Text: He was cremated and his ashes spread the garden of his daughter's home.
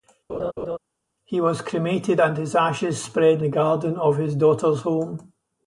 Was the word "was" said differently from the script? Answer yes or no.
no